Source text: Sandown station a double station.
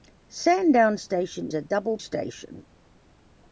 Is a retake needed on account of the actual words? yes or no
no